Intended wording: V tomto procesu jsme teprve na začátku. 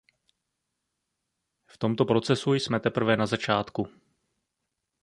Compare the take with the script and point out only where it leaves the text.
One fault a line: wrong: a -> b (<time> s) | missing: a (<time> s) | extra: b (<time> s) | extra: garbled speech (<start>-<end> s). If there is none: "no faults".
no faults